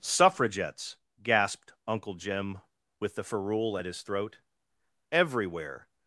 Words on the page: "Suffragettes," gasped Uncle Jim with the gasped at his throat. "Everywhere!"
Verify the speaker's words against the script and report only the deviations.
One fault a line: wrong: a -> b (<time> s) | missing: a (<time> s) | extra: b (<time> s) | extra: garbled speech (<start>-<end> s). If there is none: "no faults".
wrong: gasped -> ferule (3.2 s)